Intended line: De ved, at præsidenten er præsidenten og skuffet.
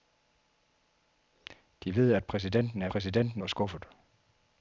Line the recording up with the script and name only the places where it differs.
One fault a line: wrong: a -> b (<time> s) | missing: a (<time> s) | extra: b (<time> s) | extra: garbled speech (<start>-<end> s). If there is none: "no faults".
no faults